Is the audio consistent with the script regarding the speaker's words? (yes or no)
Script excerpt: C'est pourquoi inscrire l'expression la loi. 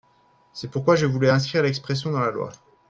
no